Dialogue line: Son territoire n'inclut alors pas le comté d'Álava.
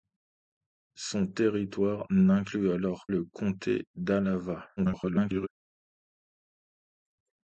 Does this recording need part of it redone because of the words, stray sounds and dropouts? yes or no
yes